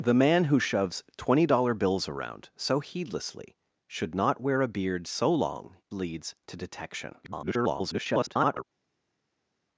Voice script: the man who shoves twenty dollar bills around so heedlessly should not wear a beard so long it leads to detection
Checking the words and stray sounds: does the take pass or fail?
fail